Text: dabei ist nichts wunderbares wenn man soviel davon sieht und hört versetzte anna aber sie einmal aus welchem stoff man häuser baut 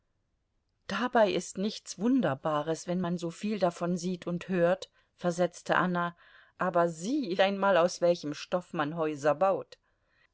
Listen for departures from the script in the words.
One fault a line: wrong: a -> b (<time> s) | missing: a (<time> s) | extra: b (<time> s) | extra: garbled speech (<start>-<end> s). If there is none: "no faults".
no faults